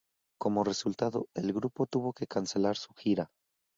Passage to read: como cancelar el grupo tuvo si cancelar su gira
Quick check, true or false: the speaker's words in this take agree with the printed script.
false